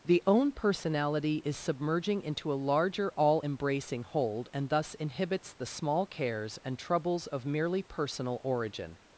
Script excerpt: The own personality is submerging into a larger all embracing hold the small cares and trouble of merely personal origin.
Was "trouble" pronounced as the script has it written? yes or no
no